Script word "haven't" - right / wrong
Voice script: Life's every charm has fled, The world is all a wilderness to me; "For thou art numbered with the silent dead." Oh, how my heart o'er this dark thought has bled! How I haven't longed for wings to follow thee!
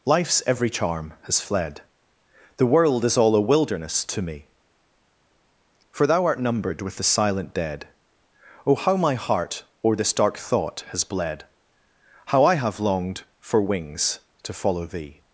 wrong